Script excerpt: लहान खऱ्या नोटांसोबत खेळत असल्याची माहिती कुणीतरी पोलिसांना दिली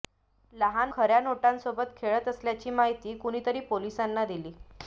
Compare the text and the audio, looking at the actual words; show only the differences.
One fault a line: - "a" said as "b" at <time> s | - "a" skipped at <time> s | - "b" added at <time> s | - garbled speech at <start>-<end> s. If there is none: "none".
none